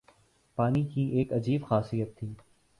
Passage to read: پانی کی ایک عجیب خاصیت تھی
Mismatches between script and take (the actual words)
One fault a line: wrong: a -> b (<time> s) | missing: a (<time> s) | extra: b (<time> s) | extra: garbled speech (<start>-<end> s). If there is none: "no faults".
no faults